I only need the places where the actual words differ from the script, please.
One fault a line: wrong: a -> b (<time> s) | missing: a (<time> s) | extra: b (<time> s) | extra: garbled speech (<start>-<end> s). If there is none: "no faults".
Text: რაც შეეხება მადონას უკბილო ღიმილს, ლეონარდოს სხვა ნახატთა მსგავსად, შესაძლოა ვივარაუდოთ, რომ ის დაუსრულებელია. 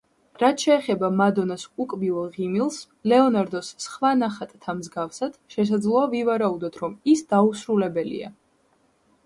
no faults